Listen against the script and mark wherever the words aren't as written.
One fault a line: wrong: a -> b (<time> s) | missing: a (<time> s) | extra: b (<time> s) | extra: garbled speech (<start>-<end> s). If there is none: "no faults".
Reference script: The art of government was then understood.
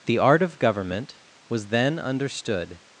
no faults